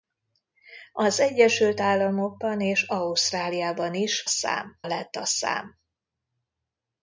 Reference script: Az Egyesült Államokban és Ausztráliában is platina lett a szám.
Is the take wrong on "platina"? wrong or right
wrong